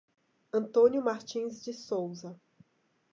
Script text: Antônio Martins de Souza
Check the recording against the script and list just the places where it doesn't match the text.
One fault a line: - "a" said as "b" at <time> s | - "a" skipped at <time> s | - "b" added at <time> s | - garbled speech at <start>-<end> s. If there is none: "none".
none